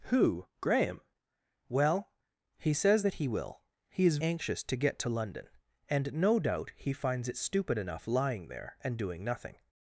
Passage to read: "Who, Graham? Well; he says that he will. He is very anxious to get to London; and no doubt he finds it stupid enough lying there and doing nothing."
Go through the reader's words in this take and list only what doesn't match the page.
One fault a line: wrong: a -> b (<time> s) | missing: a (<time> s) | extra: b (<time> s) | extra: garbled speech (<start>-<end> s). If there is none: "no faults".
missing: very (4.2 s)